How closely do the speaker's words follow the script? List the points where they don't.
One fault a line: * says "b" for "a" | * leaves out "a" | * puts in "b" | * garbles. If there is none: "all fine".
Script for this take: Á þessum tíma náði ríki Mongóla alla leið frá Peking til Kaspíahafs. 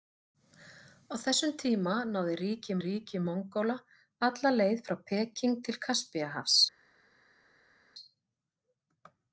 * puts in "ríki"